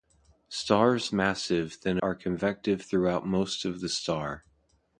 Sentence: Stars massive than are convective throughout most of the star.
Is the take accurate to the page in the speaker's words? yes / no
yes